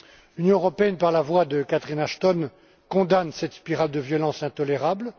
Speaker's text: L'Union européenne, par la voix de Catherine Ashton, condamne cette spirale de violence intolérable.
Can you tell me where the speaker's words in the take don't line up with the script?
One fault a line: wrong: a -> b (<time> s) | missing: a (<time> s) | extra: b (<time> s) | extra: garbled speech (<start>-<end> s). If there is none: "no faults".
no faults